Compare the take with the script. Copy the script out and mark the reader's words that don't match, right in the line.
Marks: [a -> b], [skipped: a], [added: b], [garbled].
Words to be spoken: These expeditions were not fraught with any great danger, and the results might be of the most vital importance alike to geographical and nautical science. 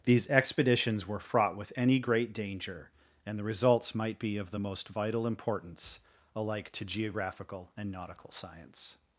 These expeditions were [skipped: not] fraught with any great danger, and the results might be of the most vital importance alike to geographical and nautical science.